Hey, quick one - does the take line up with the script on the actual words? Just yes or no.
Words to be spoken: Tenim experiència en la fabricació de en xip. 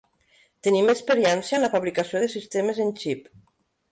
no